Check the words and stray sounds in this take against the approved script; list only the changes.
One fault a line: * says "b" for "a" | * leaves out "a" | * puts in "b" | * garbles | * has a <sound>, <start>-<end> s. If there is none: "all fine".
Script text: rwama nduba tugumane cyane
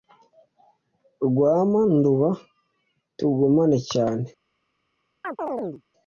* has a chirp, 5.2-5.8 s